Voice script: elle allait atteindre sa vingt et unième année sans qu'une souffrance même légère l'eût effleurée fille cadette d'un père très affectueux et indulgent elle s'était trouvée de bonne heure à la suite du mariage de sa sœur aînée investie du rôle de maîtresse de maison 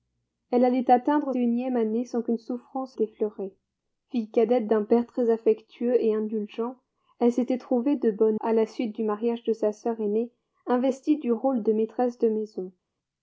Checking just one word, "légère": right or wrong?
wrong